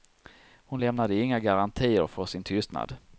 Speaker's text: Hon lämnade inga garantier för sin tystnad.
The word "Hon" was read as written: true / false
true